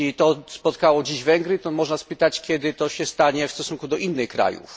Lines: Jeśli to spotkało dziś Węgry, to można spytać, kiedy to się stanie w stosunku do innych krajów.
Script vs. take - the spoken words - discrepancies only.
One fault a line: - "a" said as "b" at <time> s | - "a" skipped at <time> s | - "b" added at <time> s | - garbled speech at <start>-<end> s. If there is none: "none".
none